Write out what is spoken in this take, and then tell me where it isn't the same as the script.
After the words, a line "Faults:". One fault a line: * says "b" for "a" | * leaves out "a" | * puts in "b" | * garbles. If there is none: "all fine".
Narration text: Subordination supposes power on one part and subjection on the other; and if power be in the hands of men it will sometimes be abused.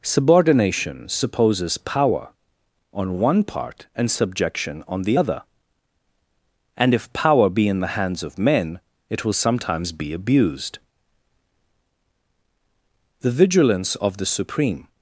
Subordination supposes power on one part and subjection on the other; and if power be in the hands of men it will sometimes be abused. The vigilance of the supreme
Faults:
* puts in "The vigilance of the supreme"